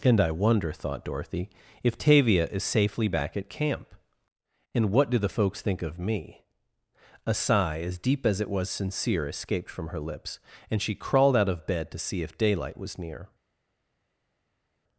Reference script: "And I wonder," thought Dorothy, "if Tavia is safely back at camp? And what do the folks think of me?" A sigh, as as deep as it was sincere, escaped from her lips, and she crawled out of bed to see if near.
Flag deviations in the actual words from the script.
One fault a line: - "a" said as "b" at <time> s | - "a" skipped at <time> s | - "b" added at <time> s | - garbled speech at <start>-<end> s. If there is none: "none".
- "as" skipped at 8.0 s
- "daylight was" added at 12.4 s